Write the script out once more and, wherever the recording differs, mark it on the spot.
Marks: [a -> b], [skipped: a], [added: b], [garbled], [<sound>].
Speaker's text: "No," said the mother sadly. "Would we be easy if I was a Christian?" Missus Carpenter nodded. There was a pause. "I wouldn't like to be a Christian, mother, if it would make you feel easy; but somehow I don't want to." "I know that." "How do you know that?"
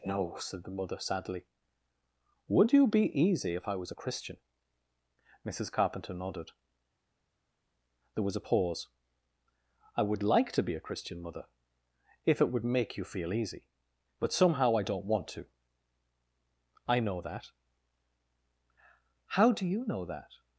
"No," said the mother sadly. "Would [we -> you] be easy if I was a Christian?" Missus Carpenter nodded. There was a pause. "I [wouldn't -> would] like to be a Christian, mother, if it would make you feel easy; but somehow I don't want to." "I know that." "How do you know that?"